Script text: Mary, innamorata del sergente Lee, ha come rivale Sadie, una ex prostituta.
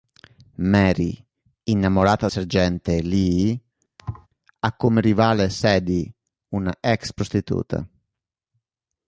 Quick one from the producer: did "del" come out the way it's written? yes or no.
no